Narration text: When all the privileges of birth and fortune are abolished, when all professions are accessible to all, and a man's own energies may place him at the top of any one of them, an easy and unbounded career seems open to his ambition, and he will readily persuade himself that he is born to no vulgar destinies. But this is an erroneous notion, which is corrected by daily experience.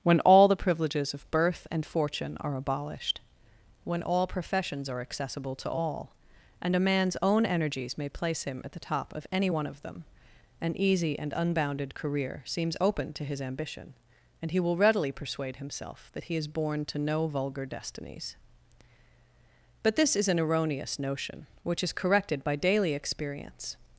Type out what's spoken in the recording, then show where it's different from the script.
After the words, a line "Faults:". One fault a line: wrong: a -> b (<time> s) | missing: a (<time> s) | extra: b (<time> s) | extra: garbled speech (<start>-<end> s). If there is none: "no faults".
When all the privileges of birth and fortune are abolished, when all professions are accessible to all, and a man's own energies may place him at the top of any one of them, an easy and unbounded career seems open to his ambition, and he will readily persuade himself that he is born to no vulgar destinies. But this is an erroneous notion, which is corrected by daily experience.
Faults:
no faults